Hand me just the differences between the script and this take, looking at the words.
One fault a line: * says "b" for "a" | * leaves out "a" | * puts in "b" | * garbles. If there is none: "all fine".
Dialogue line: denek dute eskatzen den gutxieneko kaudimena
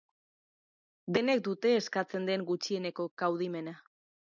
all fine